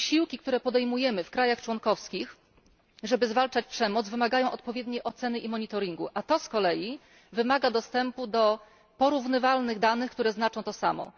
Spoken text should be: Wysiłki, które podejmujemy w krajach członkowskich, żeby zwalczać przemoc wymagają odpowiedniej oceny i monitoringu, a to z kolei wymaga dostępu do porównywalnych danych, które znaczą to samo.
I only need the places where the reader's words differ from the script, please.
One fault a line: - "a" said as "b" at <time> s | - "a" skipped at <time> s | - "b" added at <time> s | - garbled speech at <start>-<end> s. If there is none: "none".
none